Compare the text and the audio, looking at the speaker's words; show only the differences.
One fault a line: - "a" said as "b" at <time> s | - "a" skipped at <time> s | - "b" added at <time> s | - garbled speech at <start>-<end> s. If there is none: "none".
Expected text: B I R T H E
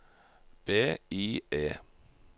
- "R T H" skipped at 1.4 s